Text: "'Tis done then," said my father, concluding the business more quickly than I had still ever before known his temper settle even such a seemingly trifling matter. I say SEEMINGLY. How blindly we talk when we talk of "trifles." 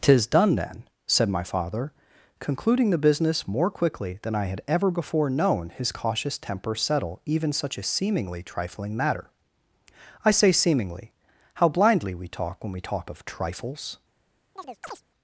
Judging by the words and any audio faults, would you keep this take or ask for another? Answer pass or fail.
fail